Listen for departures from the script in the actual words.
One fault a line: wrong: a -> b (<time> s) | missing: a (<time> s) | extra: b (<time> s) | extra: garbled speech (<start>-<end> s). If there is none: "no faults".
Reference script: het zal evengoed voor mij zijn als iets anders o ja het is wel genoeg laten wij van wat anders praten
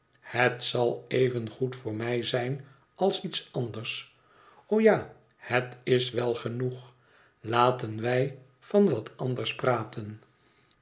no faults